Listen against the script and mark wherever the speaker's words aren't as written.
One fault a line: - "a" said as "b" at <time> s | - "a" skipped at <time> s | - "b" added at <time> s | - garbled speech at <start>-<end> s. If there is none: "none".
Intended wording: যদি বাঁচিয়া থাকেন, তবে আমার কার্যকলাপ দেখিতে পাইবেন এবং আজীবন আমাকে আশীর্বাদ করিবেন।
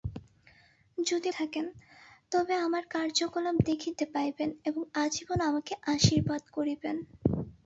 - "বাঁচিয়া" skipped at 1.3 s